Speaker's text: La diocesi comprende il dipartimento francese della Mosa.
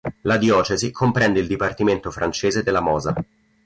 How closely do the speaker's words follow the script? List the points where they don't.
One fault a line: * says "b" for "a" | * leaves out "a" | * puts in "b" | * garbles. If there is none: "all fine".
all fine